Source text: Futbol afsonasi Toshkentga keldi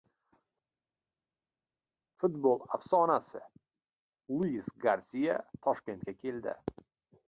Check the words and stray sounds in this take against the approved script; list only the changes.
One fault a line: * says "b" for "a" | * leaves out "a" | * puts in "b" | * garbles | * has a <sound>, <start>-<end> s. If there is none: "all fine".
* puts in "Luis Garsiya"